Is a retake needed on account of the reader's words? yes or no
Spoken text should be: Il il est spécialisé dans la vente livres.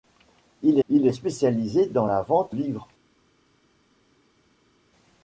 no